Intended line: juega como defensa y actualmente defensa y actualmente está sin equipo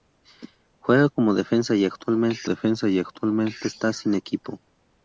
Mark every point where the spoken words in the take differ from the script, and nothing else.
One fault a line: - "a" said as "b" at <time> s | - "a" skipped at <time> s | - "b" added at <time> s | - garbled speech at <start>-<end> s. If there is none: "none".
none